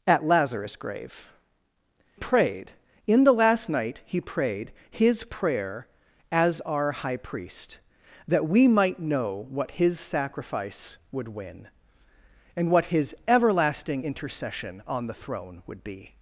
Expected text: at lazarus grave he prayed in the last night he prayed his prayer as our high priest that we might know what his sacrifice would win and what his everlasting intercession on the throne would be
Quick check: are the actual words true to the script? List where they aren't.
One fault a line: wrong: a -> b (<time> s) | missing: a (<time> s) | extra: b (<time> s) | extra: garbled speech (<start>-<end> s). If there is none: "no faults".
missing: he (1.3 s)